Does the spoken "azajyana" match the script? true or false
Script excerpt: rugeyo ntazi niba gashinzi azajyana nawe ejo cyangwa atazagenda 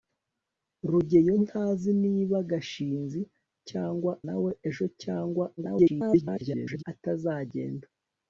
false